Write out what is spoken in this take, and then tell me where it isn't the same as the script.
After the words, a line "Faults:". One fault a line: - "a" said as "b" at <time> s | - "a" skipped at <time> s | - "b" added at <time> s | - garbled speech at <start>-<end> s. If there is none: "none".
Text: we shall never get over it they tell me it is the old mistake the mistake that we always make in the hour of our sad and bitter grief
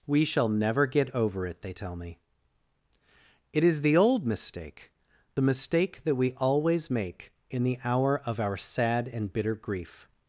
we shall never get over it they tell me it is the old mistake the mistake that we always make in the hour of our sad and bitter grief
Faults:
none